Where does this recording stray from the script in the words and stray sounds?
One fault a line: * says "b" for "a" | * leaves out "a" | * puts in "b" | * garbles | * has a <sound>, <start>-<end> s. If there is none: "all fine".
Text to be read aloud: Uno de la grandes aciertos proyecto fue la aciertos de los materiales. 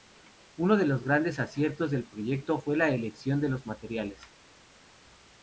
* says "los" for "la"
* puts in "del"
* says "elección" for "aciertos"